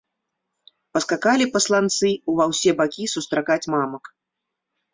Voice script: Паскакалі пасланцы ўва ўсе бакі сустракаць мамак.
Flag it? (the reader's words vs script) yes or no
no